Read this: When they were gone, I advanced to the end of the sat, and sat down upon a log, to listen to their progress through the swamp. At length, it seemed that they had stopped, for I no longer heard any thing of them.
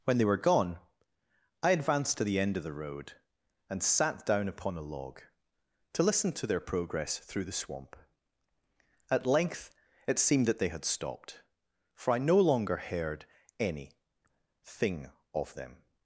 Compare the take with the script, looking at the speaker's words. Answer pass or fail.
fail